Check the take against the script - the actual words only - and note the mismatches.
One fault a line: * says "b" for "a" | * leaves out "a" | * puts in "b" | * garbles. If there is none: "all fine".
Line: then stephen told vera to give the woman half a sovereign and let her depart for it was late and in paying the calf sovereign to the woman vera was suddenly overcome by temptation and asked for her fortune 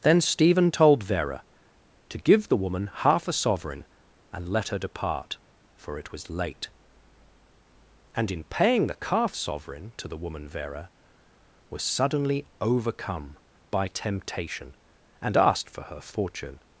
all fine